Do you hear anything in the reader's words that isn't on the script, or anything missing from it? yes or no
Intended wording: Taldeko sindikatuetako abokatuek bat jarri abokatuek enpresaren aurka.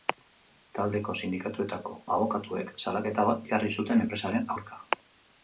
yes